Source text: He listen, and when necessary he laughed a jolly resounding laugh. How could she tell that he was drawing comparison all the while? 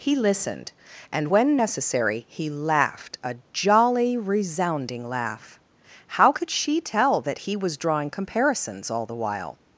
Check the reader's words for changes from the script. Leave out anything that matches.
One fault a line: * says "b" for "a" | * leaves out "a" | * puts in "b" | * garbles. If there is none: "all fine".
* says "listened" for "listen"
* says "comparisons" for "comparison"